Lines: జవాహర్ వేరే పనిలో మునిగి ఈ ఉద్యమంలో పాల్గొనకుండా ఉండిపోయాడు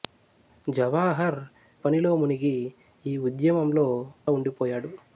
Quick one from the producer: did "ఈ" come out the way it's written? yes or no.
yes